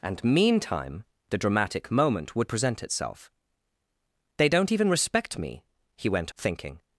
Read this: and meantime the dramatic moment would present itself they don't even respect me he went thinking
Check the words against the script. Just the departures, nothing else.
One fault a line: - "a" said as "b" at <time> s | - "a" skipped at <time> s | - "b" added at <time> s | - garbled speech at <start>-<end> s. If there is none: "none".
none